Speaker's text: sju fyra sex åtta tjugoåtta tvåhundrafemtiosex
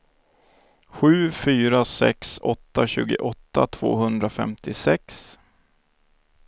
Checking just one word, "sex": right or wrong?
right